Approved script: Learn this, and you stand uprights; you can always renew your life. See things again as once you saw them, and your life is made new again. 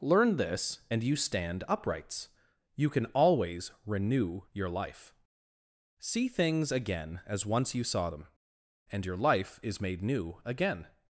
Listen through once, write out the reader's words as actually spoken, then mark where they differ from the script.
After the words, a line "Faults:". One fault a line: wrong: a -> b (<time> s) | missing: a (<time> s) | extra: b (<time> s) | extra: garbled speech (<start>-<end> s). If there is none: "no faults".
Learn this, and you stand uprights; you can always renew your life. See things again as once you saw them, and your life is made new again.
Faults:
no faults